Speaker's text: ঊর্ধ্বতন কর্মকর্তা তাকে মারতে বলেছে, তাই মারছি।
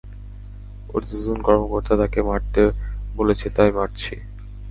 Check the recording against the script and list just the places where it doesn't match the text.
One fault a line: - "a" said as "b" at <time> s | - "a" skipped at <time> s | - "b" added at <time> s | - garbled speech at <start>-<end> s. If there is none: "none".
none